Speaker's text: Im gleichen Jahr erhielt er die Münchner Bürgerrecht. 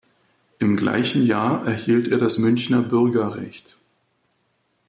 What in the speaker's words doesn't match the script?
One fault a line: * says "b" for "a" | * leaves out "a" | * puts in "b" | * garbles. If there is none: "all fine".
* says "das" for "die"